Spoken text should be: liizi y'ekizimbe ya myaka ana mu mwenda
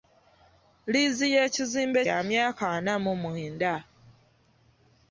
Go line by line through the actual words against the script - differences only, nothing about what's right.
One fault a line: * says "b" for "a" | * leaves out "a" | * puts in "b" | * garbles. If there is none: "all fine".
all fine